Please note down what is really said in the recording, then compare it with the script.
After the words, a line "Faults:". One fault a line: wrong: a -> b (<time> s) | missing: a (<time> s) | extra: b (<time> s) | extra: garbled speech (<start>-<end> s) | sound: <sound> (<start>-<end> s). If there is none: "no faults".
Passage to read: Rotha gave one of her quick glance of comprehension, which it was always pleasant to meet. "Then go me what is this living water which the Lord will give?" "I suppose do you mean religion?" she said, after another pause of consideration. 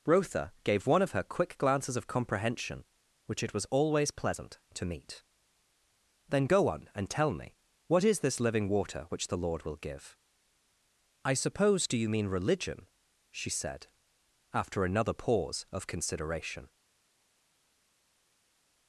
Rotha gave one of her quick glances of comprehension, which it was always pleasant to meet. "Then go on, and tell me what is this living water which the Lord will give?" "I suppose do you mean religion?" she said, after another pause of consideration.
Faults:
wrong: glance -> glances (1.6 s)
extra: on and tell (6.7 s)